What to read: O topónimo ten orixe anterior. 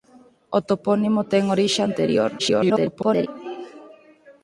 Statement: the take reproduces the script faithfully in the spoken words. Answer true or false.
false